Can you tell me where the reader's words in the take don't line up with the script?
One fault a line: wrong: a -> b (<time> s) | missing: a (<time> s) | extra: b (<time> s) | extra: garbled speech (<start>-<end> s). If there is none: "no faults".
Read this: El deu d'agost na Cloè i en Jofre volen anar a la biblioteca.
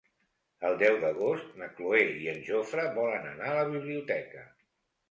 no faults